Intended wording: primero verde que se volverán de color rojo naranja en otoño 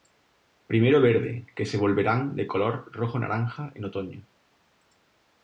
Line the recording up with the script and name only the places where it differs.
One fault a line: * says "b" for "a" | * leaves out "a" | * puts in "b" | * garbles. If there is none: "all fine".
all fine